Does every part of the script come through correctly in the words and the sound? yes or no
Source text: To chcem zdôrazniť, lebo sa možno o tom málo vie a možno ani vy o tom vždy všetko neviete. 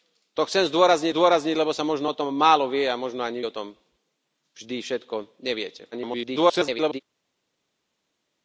no